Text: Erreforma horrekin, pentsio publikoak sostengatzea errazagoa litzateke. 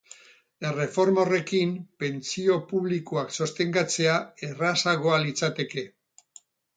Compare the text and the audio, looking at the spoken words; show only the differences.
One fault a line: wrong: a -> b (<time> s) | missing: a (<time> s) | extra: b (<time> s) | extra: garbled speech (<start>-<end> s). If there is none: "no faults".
no faults